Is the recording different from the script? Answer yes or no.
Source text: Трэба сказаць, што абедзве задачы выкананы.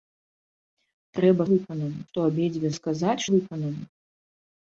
yes